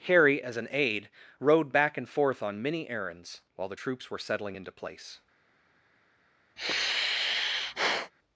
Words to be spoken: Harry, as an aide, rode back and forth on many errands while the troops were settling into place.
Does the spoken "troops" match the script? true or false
true